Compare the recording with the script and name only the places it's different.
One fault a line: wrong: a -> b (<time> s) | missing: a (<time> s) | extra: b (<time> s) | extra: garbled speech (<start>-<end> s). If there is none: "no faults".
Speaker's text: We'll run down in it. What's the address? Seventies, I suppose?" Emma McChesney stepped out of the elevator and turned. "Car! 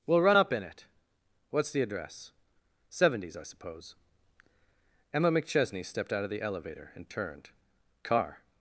wrong: down -> up (0.3 s)